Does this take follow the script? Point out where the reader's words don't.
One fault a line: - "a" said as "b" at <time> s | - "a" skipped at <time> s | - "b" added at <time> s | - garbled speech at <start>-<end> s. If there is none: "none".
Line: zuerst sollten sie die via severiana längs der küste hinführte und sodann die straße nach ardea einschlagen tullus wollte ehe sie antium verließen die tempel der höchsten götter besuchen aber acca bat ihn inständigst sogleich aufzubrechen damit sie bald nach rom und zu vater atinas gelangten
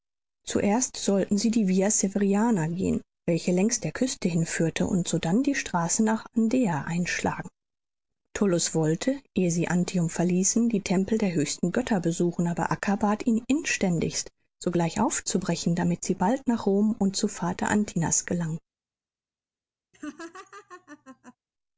- "gehen welche" added at 2.6 s